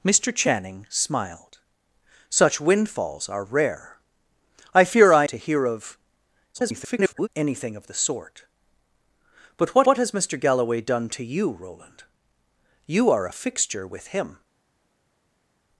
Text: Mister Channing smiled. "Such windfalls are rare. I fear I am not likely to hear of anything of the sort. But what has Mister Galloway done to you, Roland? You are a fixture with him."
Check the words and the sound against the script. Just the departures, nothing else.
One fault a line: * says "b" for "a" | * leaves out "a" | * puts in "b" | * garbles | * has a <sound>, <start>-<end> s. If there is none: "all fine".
* leaves out "am not likely"
* garbles
* puts in "what"